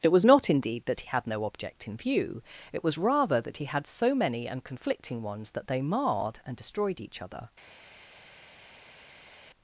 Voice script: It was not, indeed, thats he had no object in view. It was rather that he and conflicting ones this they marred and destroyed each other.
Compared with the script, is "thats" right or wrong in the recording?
wrong